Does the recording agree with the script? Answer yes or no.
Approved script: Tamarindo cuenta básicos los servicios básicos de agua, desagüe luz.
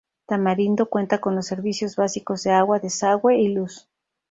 no